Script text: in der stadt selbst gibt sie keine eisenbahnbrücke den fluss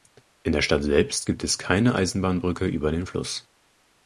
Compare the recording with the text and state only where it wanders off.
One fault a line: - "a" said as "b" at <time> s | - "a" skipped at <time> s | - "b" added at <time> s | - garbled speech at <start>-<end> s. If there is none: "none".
- "sie" said as "es" at 1.4 s
- "über" added at 2.7 s